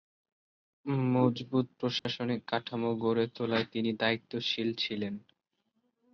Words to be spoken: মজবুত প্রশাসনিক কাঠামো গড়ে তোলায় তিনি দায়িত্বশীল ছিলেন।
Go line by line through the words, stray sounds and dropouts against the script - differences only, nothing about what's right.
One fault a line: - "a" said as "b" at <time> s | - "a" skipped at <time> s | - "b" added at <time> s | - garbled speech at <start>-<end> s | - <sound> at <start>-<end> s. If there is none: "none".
- dropout at 2.0-2.1 s